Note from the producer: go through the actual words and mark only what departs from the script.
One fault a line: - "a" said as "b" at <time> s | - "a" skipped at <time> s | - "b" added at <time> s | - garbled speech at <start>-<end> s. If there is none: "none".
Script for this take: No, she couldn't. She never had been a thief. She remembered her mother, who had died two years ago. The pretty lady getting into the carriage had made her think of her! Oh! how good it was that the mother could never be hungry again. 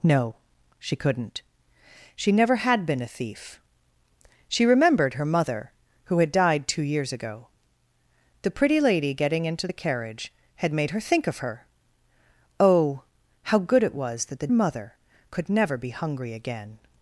none